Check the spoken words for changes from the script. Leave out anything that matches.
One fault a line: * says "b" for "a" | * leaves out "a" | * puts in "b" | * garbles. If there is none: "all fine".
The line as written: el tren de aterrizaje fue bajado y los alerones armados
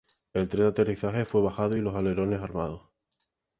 all fine